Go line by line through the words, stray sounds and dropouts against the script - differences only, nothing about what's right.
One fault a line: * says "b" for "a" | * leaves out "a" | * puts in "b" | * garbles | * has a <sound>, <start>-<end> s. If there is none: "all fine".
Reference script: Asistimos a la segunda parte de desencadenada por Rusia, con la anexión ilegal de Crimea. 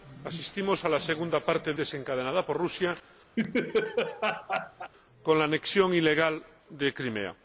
* has a laugh, 3.4-4.9 s